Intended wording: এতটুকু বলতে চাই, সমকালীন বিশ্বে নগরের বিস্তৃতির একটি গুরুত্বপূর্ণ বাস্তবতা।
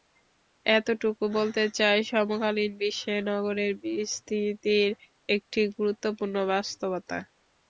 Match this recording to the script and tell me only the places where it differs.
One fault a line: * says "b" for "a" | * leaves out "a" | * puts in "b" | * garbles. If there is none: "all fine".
all fine